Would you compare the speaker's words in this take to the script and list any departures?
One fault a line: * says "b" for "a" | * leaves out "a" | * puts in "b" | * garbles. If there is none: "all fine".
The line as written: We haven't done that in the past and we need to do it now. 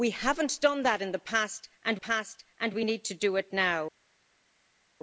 * puts in "past and"